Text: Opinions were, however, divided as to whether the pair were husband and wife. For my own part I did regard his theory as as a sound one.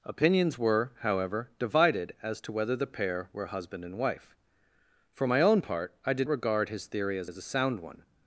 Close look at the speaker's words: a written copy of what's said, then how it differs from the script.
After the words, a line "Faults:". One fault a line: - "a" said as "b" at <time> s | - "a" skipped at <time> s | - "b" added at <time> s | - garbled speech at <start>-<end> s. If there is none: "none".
Opinions were, however, divided as to whether the pair were husband and wife. For my own part I did regard his theory as as a sound one.
Faults:
none